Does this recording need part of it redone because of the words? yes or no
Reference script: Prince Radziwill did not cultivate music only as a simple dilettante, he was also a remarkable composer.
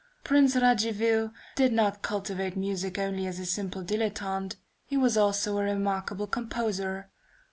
no